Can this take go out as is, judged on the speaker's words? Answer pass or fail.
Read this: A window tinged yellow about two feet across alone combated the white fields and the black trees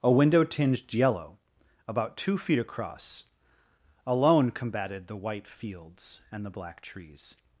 pass